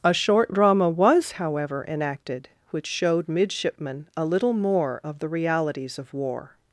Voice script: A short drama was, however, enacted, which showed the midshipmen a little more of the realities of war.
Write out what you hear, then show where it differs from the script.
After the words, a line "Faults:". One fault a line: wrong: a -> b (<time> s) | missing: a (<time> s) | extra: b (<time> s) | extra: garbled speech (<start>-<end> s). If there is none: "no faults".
A short drama was, however, enacted, which showed midshipmen a little more of the realities of war.
Faults:
missing: the (3.3 s)